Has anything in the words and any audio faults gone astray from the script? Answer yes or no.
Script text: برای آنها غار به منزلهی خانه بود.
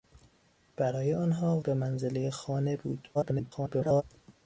yes